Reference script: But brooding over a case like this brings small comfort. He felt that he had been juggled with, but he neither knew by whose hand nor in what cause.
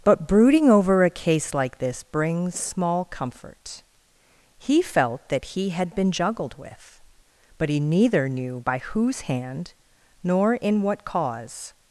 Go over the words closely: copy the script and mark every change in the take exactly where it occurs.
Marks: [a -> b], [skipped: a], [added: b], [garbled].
But brooding over a case like this brings small comfort. He felt that he had been juggled with, but he neither knew by whose hand nor in what cause.